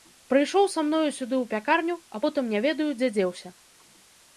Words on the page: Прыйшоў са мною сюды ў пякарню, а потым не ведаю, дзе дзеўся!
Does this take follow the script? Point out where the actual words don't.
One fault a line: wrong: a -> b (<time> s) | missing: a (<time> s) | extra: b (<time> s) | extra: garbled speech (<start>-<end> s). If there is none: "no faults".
no faults